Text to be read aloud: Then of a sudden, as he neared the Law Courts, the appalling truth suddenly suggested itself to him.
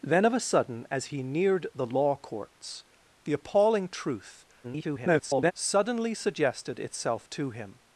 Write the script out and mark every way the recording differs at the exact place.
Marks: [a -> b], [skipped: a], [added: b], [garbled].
Then of a sudden, as he neared the Law Courts, the appalling truth [garbled] suddenly suggested itself to him.